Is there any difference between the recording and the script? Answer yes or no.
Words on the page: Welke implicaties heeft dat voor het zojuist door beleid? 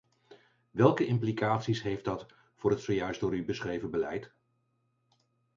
yes